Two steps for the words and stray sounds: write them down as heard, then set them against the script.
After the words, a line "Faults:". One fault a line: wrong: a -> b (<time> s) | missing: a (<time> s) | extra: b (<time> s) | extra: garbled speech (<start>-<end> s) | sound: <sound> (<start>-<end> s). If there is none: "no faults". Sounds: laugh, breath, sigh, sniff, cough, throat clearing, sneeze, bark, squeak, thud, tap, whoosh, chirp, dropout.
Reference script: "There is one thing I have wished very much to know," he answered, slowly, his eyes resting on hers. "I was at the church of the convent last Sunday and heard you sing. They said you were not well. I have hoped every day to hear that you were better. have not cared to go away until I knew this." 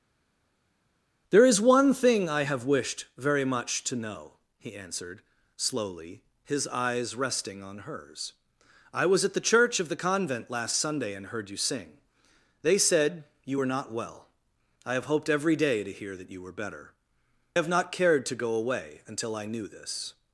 "There is one thing I have wished very much to know," he answered, slowly, his eyes resting on hers. "I was at the church of the convent last Sunday and heard you sing. They said you were not well. I have hoped every day to hear that you were better. have not cared to go away until I knew this."
Faults:
no faults